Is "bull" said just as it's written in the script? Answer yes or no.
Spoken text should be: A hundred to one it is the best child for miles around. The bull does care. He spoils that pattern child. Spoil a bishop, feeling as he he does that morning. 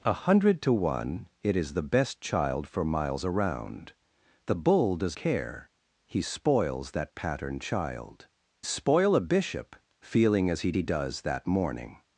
yes